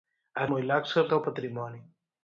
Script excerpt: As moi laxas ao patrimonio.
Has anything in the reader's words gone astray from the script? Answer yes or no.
no